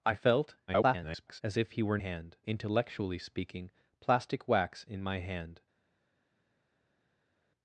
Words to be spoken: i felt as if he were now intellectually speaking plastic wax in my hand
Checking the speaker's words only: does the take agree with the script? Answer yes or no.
no